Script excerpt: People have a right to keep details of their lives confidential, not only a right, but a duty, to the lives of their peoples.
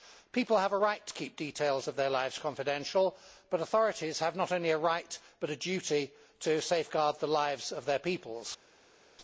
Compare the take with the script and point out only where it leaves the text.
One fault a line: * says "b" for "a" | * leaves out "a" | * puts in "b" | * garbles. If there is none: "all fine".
* puts in "but authorities have"
* puts in "safeguard"